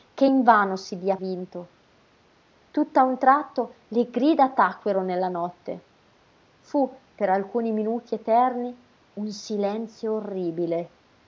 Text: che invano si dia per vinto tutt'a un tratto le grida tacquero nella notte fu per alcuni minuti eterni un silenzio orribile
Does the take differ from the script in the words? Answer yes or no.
yes